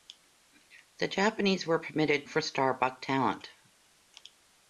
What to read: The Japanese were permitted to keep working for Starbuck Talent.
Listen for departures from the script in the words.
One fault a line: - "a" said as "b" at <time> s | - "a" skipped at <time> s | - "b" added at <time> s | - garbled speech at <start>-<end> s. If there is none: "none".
- "to keep working" skipped at 2.2 s